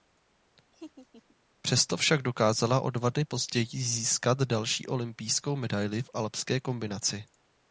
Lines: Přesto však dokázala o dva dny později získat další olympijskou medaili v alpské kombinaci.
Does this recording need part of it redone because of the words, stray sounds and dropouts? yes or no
yes